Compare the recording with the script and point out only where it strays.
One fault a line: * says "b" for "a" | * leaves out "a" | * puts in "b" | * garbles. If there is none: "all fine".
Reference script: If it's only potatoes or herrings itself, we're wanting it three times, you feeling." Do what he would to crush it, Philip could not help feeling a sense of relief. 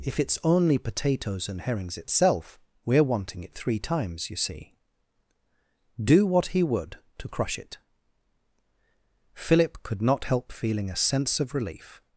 * says "and" for "or"
* says "see" for "feeling"